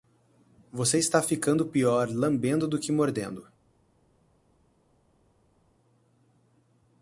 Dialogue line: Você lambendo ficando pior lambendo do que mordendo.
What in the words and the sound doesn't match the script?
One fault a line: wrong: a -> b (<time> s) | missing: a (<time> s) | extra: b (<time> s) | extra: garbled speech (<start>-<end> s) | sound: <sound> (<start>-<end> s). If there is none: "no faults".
wrong: lambendo -> está (1.0 s)